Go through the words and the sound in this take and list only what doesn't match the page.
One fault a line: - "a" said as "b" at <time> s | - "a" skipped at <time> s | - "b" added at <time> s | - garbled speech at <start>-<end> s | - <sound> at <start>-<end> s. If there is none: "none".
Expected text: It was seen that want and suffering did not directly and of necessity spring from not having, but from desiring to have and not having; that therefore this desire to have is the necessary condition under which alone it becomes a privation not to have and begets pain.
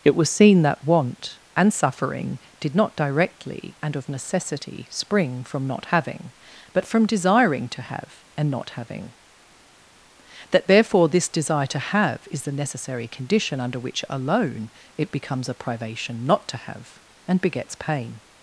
none